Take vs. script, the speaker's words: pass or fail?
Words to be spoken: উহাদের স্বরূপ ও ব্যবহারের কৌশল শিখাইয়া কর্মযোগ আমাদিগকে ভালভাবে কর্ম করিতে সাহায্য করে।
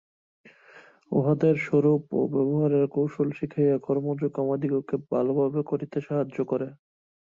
fail